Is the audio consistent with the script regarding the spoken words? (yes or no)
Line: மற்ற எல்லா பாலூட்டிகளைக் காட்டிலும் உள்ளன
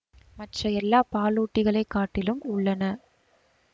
yes